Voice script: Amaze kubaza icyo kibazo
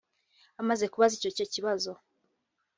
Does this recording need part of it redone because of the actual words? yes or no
yes